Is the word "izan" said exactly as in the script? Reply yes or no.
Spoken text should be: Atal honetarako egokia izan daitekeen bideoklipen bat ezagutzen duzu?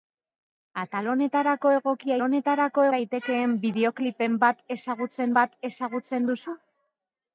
no